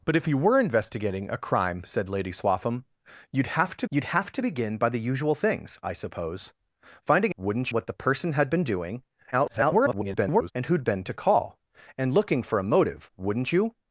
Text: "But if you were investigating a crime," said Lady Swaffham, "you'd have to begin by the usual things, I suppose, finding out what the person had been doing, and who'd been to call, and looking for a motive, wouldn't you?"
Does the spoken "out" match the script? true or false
false